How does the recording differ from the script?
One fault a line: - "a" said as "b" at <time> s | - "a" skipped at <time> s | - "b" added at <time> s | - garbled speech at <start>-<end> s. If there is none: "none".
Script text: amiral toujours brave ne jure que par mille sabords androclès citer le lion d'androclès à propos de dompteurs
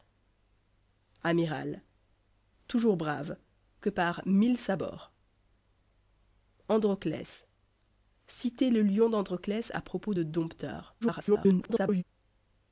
- "ne jure" skipped at 3.4 s
- garbled speech at 11.0-12.0 s